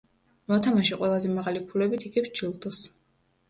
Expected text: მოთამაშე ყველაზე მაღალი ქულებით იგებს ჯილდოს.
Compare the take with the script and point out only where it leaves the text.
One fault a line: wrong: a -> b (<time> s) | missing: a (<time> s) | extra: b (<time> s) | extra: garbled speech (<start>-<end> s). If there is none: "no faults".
no faults